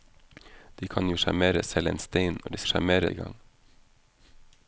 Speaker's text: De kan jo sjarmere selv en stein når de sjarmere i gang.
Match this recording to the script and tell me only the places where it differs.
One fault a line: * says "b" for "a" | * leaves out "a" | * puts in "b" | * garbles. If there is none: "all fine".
all fine